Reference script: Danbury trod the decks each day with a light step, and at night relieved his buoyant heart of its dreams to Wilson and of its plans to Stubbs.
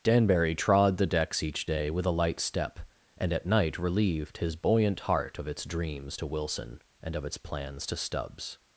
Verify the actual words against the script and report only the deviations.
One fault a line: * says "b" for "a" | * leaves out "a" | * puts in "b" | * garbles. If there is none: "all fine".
all fine